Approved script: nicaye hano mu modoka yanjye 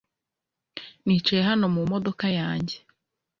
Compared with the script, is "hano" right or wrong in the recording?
right